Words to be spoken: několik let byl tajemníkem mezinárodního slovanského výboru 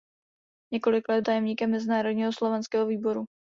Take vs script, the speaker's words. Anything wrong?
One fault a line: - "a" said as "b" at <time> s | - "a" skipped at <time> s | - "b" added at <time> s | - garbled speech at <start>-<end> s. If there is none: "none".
- "byl" skipped at 1.2 s